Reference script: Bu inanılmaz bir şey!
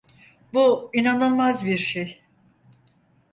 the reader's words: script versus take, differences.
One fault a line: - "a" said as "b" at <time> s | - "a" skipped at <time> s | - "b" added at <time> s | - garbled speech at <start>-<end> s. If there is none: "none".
none